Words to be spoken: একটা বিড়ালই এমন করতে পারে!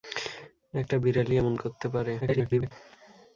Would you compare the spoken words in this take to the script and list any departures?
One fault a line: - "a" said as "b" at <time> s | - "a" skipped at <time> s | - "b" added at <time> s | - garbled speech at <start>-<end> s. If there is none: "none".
- garbled speech at 2.2-2.7 s